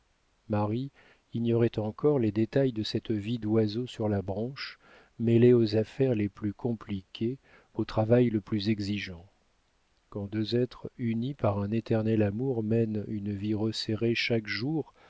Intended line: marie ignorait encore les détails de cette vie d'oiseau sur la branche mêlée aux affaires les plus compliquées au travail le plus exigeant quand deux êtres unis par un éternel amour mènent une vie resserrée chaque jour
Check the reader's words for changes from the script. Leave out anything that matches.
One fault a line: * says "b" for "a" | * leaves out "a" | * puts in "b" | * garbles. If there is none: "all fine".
all fine